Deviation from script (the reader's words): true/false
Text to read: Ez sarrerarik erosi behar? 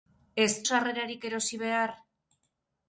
false